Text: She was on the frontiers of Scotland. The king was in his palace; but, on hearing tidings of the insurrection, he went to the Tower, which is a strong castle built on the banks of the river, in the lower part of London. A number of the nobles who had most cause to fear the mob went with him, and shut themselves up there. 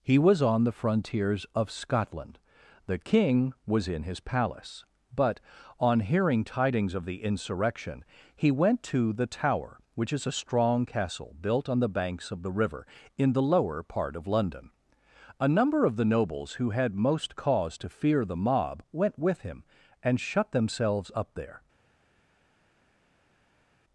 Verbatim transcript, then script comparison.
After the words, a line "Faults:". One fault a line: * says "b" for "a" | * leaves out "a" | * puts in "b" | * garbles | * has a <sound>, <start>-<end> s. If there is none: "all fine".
He was on the frontiers of Scotland. The king was in his palace; but, on hearing tidings of the insurrection, he went to the Tower, which is a strong castle built on the banks of the river, in the lower part of London. A number of the nobles who had most cause to fear the mob went with him, and shut themselves up there.
Faults:
* says "He" for "She"